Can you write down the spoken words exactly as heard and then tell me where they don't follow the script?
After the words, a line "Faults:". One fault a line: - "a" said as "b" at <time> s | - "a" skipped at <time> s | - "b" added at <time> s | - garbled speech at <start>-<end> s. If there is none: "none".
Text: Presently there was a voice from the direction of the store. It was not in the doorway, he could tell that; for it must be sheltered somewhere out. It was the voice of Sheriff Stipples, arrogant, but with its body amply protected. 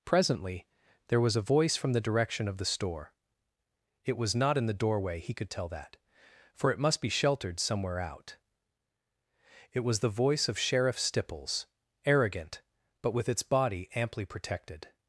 Presently there was a voice from the direction of the store. It was not in the doorway, he could tell that; for it must be sheltered somewhere out. It was the voice of Sheriff Stipples, arrogant, but with its body amply protected.
Faults:
none